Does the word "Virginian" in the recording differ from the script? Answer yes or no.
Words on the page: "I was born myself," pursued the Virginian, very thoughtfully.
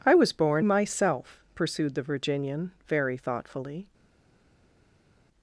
no